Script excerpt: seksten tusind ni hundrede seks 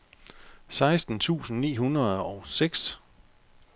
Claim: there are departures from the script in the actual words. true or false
true